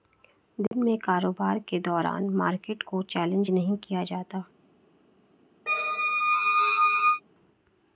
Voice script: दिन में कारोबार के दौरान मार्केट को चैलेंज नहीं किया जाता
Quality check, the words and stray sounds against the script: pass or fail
fail